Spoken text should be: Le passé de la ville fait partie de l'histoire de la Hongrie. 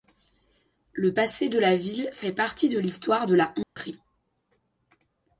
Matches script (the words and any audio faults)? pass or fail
fail